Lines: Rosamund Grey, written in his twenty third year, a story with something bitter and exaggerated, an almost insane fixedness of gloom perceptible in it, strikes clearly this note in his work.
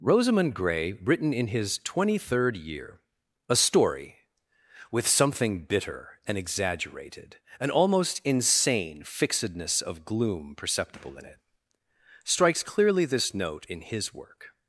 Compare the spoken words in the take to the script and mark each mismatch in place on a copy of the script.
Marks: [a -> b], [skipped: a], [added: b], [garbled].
Rosamund Grey, written in his twenty third year, a story with something bitter and exaggerated, an almost insane fixedness of gloom perceptible in it, strikes clearly this note in his work.